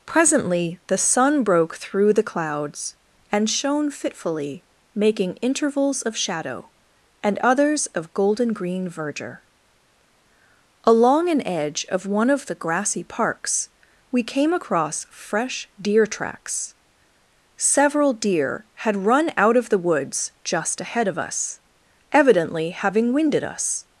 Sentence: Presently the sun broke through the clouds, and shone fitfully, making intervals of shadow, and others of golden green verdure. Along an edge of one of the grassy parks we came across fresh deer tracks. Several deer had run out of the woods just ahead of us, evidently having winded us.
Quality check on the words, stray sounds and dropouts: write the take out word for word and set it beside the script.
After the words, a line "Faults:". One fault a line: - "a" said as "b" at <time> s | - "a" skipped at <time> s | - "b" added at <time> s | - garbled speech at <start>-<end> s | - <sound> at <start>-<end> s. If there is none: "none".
Presently the sun broke through the clouds, and shone fitfully, making intervals of shadow, and others of golden green verdure. Along an edge of one of the grassy parks we came across fresh deer tracks. Several deer had run out of the woods just ahead of us, evidently having winded us.
Faults:
none